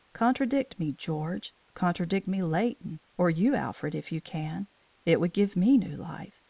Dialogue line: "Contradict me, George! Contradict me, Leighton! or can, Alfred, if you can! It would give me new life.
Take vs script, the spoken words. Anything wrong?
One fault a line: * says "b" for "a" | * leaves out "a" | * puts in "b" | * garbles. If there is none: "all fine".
* says "you" for "can"